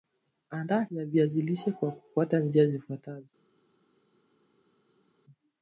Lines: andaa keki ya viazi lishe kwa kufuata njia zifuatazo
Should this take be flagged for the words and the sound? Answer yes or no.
yes